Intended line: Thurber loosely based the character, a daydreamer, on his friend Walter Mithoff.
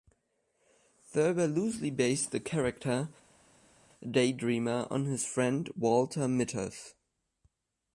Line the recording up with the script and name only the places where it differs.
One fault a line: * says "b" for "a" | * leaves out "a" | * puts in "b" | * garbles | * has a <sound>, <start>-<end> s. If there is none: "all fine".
all fine